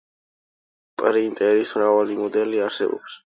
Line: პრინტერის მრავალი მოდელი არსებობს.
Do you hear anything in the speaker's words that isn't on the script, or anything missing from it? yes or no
no